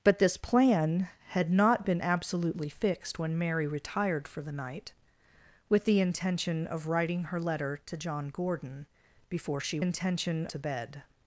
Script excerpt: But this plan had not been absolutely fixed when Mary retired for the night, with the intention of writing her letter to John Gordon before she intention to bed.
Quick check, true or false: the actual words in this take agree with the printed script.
true